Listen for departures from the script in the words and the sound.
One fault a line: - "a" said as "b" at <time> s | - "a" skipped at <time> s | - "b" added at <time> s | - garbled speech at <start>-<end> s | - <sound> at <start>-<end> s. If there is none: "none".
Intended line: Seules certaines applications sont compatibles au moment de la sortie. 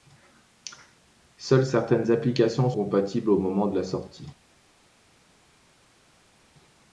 - "sont" skipped at 2.7 s